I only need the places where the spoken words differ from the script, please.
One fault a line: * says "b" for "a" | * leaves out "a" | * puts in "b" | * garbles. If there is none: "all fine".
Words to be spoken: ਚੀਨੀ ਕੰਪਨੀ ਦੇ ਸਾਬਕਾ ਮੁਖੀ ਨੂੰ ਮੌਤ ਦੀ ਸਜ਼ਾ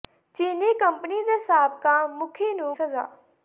* leaves out "ਮੌਤ ਦੀ"